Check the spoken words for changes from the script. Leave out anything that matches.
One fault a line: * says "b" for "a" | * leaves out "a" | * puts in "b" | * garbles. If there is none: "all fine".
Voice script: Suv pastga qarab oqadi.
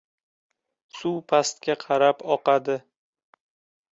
all fine